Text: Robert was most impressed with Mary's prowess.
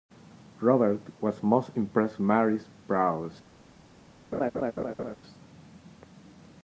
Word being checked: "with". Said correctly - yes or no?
no